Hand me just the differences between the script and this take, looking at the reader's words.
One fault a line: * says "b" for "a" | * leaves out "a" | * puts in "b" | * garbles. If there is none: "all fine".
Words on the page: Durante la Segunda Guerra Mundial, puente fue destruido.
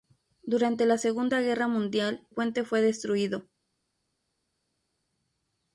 all fine